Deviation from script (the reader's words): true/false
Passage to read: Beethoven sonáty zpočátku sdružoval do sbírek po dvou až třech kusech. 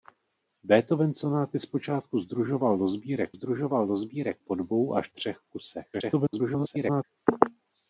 true